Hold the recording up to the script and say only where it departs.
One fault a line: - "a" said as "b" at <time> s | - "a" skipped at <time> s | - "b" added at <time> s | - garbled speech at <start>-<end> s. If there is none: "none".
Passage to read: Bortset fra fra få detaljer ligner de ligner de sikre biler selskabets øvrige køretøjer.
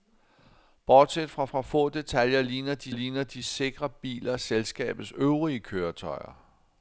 none